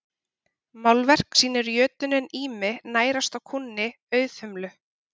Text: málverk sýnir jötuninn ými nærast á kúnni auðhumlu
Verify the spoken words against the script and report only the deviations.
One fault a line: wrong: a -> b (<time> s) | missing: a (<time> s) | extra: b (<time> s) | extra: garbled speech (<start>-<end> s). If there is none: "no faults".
no faults